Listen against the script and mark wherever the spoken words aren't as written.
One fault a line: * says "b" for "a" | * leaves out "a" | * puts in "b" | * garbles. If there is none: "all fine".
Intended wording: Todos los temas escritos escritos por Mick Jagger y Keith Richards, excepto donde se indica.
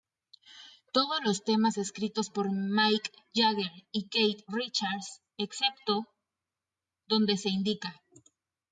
* leaves out "escritos"